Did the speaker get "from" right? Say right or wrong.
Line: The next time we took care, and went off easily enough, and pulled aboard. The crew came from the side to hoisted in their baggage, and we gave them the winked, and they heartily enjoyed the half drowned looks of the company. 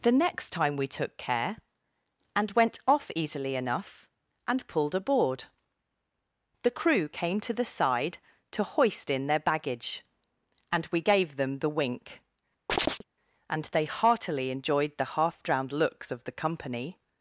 wrong